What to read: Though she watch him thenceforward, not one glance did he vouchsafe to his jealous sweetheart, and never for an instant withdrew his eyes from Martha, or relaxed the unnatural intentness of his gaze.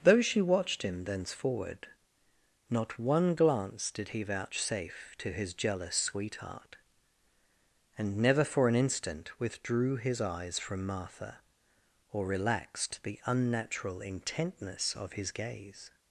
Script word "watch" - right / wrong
wrong